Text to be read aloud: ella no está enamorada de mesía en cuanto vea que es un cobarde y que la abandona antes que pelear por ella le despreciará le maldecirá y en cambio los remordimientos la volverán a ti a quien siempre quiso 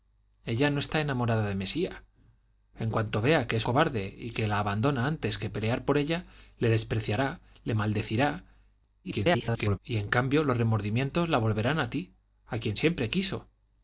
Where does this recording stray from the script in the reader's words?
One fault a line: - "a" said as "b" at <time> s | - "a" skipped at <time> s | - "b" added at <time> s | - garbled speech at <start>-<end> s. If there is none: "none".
- "un" skipped at 3.7 s
- garbled speech at 9.0-9.8 s